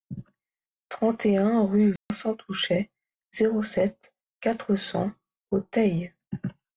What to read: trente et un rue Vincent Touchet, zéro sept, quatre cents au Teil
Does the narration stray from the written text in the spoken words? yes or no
no